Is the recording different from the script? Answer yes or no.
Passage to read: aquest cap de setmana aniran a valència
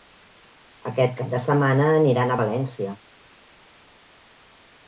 no